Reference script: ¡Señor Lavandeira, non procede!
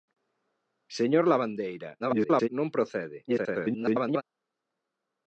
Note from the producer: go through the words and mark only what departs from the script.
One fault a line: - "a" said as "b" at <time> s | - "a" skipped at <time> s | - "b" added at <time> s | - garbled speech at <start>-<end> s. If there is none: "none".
- garbled speech at 2.0-2.5 s
- garbled speech at 3.3-4.2 s